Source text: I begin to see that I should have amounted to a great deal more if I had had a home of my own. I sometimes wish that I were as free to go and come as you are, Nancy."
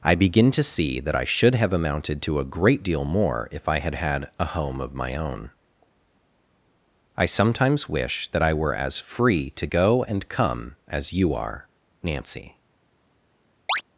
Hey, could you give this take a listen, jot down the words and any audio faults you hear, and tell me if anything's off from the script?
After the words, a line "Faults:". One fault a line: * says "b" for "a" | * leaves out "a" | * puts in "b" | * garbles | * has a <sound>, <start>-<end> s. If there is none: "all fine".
I begin to see that I should have amounted to a great deal more if I had had a home of my own. I sometimes wish that I were as free to go and come as you are, Nancy."
Faults:
* has a chirp, 13.7-13.8 s